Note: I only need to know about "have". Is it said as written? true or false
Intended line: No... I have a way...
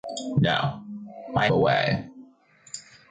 false